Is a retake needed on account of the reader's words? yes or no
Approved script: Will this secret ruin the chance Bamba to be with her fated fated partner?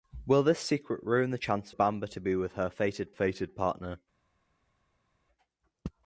no